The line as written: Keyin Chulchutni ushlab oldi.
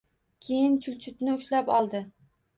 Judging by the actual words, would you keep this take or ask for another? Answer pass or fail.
pass